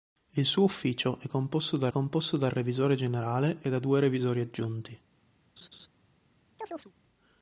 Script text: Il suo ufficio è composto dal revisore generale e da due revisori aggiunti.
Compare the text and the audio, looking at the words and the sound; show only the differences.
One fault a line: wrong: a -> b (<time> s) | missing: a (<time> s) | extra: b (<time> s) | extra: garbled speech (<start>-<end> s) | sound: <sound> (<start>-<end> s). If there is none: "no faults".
extra: composto dal (1.9 s)
sound: laugh (5.6-5.9 s)
sound: chirp (6.6-6.9 s)